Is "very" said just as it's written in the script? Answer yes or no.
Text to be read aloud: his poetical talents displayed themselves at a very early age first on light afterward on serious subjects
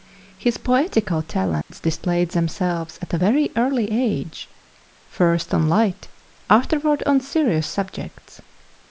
yes